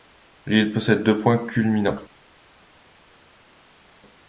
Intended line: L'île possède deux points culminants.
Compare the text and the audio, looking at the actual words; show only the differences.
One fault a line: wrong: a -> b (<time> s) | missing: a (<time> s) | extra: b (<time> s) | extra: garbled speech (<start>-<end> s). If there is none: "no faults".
no faults